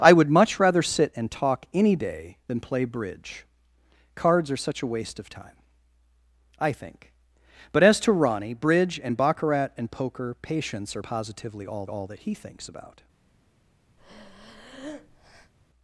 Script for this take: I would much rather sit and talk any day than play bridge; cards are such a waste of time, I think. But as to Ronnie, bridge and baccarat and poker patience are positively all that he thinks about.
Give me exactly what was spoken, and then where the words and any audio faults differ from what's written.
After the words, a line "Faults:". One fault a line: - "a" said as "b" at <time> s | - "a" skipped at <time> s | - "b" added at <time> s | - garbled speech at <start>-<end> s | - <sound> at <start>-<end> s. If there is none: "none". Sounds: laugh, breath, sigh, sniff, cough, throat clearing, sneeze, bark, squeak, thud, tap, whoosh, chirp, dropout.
I would much rather sit and talk any day than play bridge; cards are such a waste of time, I think. But as to Ronnie, bridge and baccarat and poker patience are positively all all that he thinks about.
Faults:
- "all" added at 11.9 s
- breath at 14.0-15.5 s